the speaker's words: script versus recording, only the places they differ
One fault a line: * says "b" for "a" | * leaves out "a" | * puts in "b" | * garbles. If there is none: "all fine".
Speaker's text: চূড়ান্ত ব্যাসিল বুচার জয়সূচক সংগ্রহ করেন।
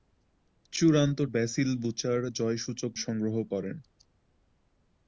all fine